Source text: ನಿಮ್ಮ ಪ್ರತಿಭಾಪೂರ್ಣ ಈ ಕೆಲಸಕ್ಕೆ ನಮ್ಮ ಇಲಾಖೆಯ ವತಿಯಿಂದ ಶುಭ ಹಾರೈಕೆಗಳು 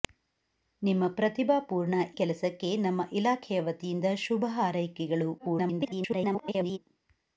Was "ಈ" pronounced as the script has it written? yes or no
no